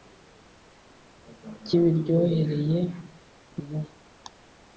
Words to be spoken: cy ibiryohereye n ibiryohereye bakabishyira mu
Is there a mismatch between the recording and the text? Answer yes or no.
yes